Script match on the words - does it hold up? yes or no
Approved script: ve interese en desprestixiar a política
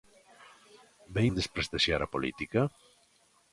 no